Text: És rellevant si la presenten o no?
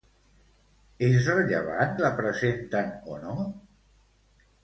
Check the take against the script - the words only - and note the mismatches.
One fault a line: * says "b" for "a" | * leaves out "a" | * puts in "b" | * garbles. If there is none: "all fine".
* leaves out "si"